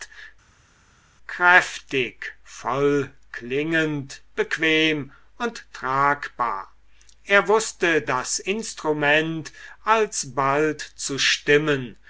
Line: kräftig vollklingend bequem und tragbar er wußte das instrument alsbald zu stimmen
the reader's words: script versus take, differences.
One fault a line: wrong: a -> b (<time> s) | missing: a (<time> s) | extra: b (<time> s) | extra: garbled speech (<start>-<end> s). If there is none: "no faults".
no faults